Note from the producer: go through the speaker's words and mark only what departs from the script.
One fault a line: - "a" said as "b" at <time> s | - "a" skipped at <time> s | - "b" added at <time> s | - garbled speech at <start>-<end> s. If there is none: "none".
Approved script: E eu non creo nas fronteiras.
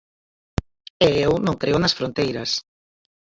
none